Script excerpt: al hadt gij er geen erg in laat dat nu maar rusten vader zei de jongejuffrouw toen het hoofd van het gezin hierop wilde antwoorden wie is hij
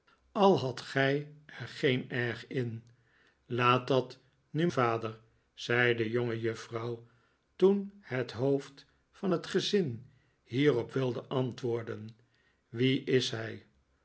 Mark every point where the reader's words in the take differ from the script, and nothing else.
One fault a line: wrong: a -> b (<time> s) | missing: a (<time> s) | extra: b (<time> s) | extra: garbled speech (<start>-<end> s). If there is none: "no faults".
missing: maar rusten (4.7 s)